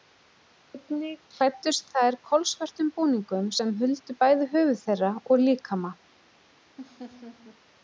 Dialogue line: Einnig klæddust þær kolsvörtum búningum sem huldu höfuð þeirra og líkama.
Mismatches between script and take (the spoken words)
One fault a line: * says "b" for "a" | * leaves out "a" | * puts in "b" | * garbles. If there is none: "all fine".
* puts in "bæði"